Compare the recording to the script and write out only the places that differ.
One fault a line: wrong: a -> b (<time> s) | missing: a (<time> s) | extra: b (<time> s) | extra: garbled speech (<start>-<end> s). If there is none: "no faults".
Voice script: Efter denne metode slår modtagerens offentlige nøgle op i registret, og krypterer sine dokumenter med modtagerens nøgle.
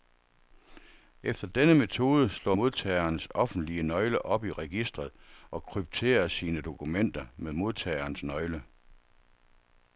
no faults